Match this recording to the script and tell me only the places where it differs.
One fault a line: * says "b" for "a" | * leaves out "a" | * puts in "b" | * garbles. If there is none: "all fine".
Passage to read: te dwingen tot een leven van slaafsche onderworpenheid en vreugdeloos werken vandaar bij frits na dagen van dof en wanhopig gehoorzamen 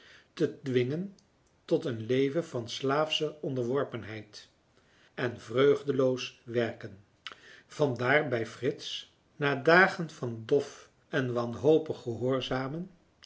all fine